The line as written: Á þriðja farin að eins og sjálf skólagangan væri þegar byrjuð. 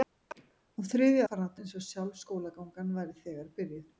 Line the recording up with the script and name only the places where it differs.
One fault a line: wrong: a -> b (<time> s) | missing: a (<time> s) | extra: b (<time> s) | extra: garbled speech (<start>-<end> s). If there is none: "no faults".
no faults